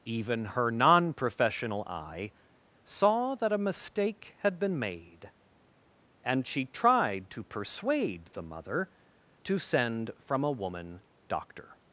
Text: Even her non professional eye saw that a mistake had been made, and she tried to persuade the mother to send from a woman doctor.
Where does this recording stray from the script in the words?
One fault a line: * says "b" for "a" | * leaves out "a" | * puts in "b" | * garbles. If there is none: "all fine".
all fine